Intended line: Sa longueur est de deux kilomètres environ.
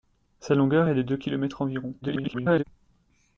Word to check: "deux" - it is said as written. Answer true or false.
true